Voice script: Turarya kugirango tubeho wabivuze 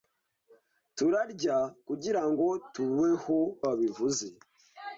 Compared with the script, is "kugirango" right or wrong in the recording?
right